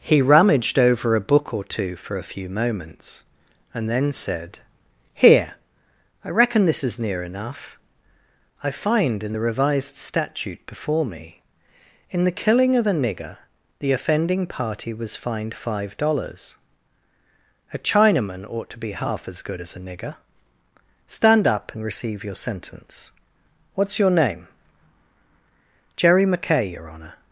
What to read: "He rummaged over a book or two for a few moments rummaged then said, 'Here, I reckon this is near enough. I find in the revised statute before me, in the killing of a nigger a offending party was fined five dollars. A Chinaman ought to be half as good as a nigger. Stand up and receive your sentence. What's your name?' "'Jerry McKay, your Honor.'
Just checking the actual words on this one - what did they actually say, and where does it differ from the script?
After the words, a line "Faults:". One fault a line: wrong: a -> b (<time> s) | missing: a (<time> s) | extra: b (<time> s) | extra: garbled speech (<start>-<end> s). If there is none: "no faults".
"He rummaged over a book or two for a few moments and then said, 'Here, I reckon this is near enough. I find in the revised statute before me, in the killing of a nigger the offending party was fined five dollars. A Chinaman ought to be half as good as a nigger. Stand up and receive your sentence. What's your name?' "'Jerry McKay, your Honor.'
Faults:
wrong: rummaged -> and (3.7 s)
wrong: a -> the (13.8 s)